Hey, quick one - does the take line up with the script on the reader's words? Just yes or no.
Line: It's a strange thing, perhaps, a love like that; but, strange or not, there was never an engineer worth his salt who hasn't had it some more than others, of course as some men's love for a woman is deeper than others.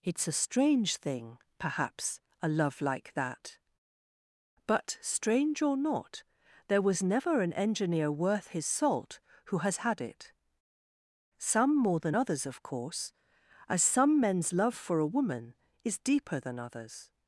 no